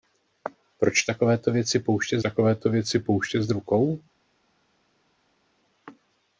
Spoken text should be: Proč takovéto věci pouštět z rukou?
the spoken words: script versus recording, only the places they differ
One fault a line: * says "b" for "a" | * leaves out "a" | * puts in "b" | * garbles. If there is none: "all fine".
* puts in "takovéto věci pouštět"